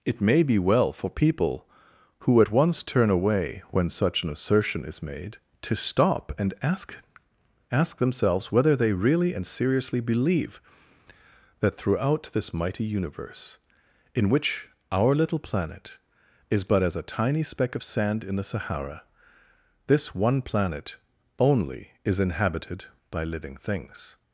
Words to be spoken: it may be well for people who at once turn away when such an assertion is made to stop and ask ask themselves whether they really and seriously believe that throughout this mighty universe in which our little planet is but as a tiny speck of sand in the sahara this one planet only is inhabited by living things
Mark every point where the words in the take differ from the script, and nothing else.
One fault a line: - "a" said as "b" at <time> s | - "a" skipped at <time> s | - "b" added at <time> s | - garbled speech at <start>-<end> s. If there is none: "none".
none